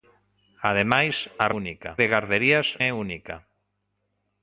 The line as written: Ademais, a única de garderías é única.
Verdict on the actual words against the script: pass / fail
pass